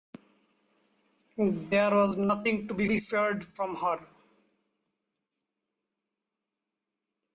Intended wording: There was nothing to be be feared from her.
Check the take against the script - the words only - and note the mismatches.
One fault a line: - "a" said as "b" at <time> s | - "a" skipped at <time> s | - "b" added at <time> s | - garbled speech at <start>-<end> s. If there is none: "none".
none